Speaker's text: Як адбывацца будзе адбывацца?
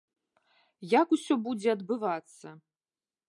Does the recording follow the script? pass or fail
fail